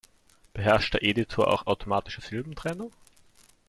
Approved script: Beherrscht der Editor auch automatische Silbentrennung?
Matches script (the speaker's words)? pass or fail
pass